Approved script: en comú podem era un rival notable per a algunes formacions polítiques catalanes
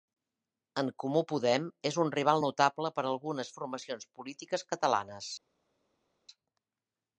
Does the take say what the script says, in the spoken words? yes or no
no